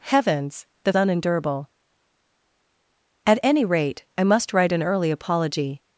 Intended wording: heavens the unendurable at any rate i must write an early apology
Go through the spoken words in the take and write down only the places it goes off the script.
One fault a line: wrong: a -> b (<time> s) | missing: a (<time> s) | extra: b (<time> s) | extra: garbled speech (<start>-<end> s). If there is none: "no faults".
no faults